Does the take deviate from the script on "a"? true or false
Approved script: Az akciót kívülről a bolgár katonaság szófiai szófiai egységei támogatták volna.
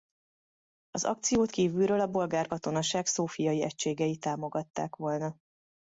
false